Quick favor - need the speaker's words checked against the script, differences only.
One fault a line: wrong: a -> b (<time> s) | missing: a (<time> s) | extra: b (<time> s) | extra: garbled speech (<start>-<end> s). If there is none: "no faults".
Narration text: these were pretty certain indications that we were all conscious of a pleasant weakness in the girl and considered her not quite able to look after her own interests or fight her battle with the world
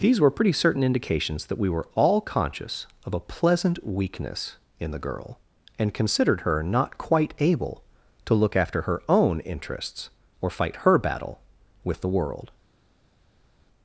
no faults